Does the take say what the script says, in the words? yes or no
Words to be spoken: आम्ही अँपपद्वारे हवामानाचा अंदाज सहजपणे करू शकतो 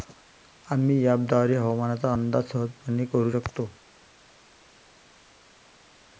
yes